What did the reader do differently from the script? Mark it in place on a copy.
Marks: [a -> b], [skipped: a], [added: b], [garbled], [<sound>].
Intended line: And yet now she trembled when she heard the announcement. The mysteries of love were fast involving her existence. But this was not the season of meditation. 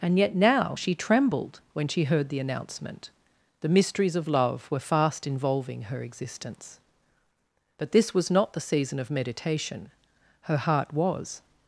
And yet now she trembled when she heard the announcement. The mysteries of love were fast involving her existence. But this was not the season of meditation. [added: Her heart was]